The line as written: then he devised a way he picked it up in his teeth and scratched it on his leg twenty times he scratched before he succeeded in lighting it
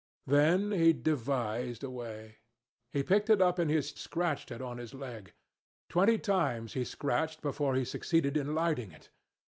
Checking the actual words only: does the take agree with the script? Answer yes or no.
no